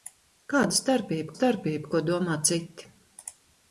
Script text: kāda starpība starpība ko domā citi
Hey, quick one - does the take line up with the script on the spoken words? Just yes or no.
yes